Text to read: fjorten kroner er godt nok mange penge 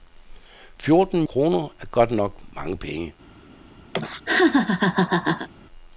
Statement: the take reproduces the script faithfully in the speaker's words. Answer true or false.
true